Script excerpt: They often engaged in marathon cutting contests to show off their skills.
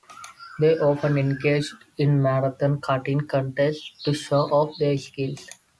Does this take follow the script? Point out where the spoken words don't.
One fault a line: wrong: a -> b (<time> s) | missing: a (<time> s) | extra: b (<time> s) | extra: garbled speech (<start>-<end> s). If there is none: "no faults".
no faults